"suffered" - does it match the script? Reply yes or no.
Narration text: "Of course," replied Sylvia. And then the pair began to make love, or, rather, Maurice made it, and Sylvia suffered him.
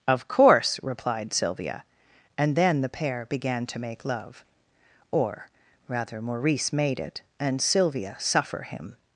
no